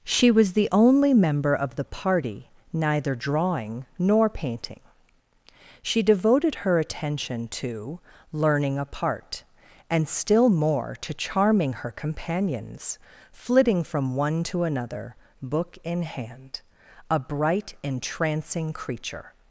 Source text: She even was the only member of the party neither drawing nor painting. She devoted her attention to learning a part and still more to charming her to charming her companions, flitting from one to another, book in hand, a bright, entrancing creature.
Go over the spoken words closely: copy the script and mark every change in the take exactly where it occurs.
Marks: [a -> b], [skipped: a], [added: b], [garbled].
She [skipped: even] was the only member of the party neither drawing nor painting. She devoted her attention to learning a part and still more to charming her [skipped: to charming her] companions, flitting from one to another, book in hand, a bright, entrancing creature.